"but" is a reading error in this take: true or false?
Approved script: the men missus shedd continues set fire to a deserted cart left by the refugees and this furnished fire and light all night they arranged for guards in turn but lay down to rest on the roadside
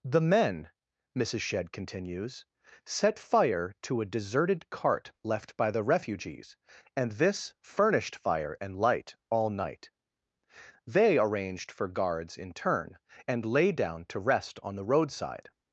true